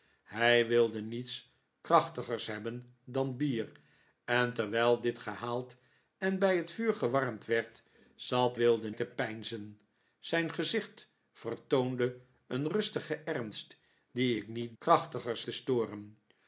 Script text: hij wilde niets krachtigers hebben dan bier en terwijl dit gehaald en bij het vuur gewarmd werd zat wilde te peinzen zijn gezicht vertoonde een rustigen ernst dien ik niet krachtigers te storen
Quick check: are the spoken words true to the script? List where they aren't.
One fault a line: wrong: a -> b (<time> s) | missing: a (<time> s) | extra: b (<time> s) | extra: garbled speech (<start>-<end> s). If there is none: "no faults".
no faults